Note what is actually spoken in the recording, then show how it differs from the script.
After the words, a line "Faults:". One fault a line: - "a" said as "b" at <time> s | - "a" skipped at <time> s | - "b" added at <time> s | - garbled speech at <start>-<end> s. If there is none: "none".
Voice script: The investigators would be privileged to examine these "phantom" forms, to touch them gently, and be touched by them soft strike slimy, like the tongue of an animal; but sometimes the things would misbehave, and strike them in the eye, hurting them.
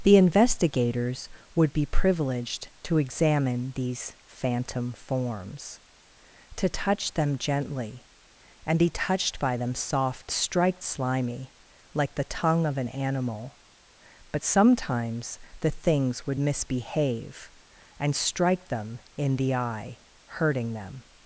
The investigators would be privileged to examine these "phantom" forms, to touch them gently, and be touched by them soft strike slimy, like the tongue of an animal; but sometimes the things would misbehave, and strike them in the eye, hurting them.
Faults:
none